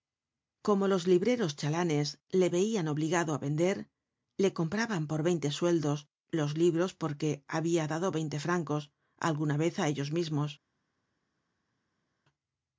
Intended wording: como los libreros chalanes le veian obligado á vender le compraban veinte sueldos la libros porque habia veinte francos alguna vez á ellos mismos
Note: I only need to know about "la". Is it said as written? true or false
false